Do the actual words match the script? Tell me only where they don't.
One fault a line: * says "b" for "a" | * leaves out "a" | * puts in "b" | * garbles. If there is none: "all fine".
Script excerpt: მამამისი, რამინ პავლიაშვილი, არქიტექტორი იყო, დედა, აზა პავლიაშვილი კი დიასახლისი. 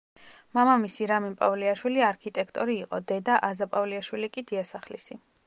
all fine